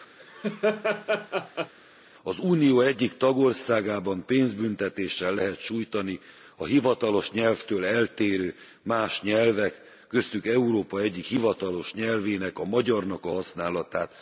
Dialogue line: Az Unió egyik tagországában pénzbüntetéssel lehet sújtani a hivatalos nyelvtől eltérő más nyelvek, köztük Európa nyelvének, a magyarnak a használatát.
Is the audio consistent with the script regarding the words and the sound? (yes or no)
no